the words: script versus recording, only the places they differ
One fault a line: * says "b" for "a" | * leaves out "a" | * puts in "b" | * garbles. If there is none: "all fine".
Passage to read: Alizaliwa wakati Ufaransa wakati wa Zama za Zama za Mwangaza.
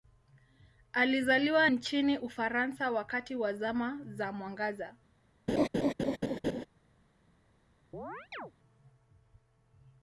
* says "nchini" for "wakati"
* leaves out "Zama za"